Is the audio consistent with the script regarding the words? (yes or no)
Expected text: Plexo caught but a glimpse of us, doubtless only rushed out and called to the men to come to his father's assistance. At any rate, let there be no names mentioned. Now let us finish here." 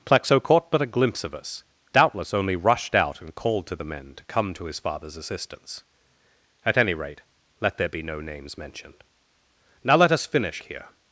yes